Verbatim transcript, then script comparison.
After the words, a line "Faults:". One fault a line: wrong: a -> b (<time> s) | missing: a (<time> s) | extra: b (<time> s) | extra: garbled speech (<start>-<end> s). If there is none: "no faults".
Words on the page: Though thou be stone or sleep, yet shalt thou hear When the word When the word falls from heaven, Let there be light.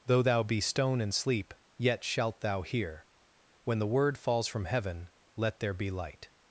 Though thou be stone and sleep, yet shalt thou hear When the word falls from heaven, Let there be light.
Faults:
wrong: or -> and (1.0 s)
missing: When the word (4.2 s)